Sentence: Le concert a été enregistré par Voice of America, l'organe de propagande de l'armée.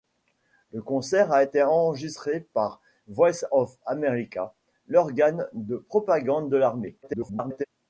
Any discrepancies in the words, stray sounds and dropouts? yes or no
yes